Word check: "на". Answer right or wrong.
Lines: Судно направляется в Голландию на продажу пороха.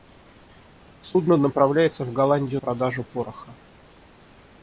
wrong